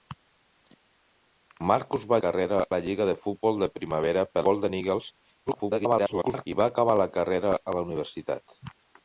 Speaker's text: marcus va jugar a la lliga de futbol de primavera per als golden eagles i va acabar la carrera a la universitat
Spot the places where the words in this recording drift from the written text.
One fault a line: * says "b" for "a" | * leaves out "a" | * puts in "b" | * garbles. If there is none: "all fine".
* says "carrera" for "jugar"
* leaves out "als"
* garbles